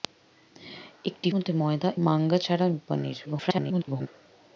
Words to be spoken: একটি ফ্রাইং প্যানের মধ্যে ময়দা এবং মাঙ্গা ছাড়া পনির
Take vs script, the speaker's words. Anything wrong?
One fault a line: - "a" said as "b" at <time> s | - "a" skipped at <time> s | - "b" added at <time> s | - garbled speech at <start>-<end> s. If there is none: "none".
- "ফ্রাইং প্যানের" skipped at 1.3 s
- "এবং" skipped at 1.9 s
- garbled speech at 3.3-4.1 s